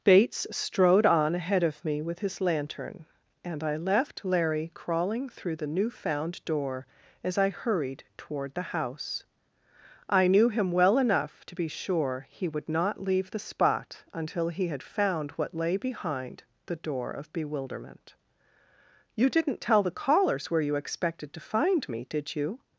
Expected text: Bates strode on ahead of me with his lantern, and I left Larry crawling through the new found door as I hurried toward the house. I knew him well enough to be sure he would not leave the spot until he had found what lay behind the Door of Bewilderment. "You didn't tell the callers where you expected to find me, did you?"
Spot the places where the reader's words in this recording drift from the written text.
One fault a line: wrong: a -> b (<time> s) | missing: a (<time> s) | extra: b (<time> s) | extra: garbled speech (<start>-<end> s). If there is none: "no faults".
no faults